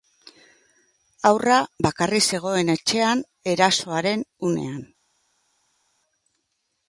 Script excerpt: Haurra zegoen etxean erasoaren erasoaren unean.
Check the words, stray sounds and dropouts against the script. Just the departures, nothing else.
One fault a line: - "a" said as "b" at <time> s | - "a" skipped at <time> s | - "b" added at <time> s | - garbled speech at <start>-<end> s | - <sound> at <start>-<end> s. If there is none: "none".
- "bakarrik" added at 1.9 s
- "erasoaren" skipped at 4.3 s